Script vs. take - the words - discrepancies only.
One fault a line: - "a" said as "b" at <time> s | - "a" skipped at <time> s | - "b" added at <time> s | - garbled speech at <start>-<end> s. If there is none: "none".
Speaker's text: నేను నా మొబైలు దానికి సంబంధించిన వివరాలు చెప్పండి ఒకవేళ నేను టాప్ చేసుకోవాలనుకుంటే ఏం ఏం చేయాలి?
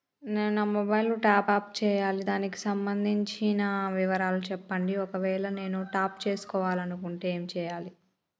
- "టాప్ అప్ చేయాలి" added at 1.2 s
- "ఏం" skipped at 7.4 s